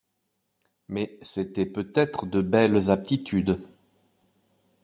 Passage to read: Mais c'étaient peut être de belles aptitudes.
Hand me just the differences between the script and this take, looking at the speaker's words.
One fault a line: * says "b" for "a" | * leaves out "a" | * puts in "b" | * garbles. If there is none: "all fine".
all fine